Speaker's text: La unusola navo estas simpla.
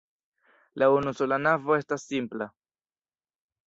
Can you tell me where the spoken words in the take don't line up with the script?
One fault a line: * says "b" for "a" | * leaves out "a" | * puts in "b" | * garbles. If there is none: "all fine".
all fine